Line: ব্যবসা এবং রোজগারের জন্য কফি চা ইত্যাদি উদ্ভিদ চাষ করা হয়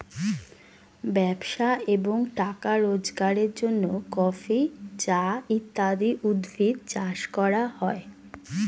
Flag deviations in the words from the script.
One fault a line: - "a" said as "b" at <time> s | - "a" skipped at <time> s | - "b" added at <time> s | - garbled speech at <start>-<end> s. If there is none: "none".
- "টাকা" added at 2.4 s